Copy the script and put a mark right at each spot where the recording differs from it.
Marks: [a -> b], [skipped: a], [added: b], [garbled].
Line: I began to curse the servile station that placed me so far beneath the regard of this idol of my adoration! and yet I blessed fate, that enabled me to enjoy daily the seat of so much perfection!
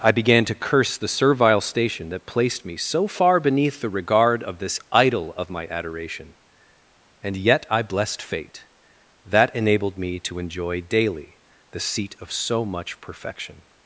I began to curse the servile station that placed me so far beneath the regard of this idol of my adoration! and yet I blessed fate, that enabled me to enjoy daily the seat of so much perfection!